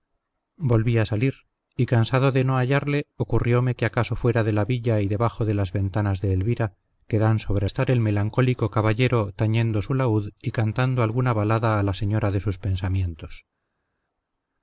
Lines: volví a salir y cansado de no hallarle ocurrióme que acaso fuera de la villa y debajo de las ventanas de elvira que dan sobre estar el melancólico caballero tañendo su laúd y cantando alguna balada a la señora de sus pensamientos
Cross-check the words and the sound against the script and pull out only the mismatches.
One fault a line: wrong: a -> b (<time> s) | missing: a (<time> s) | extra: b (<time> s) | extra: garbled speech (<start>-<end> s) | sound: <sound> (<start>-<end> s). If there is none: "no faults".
no faults